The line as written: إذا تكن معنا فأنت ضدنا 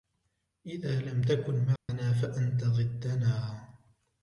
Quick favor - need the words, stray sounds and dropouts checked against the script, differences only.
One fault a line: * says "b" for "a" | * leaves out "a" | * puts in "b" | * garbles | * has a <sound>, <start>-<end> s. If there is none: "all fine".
* puts in "لم"
* has a dropout, 1.8-1.9 s